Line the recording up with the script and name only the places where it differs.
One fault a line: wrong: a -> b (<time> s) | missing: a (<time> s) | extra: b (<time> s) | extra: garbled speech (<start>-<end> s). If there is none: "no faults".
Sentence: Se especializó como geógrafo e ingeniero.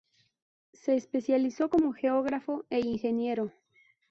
no faults